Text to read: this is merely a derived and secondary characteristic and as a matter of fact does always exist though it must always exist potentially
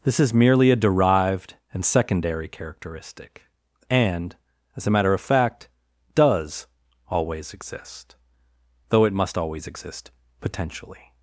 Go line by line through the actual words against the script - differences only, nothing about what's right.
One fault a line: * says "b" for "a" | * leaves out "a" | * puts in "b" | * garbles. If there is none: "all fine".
all fine